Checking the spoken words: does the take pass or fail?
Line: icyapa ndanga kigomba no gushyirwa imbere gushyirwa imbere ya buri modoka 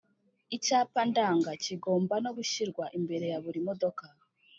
fail